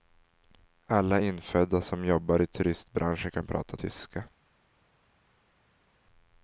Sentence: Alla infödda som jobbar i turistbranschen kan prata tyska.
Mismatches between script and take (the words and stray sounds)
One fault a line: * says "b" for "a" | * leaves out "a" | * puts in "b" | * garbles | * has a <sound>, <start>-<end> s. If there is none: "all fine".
all fine